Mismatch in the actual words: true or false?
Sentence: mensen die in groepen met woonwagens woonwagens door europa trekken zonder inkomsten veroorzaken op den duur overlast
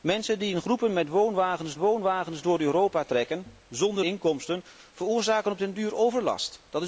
false